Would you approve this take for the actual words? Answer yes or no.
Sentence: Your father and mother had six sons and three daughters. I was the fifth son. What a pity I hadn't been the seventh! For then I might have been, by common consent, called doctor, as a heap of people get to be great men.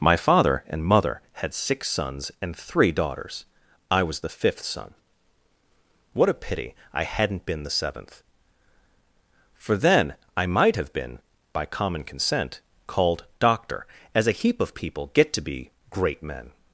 no